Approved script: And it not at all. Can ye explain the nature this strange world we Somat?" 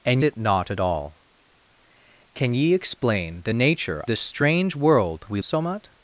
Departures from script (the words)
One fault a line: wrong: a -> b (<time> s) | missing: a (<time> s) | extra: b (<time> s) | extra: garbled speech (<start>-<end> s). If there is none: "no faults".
no faults